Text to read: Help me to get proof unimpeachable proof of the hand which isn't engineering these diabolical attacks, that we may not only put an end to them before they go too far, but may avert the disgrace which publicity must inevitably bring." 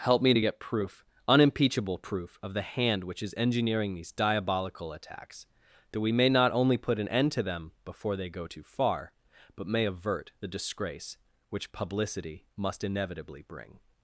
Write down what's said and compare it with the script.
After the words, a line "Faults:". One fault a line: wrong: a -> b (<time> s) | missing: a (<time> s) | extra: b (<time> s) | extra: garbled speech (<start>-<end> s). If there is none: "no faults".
Help me to get proof unimpeachable proof of the hand which is engineering these diabolical attacks, that we may not only put an end to them before they go too far, but may avert the disgrace which publicity must inevitably bring."
Faults:
wrong: isn't -> is (3.2 s)